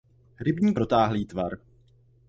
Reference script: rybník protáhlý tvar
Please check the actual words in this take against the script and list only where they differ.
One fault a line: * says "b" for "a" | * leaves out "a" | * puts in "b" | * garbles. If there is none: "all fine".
all fine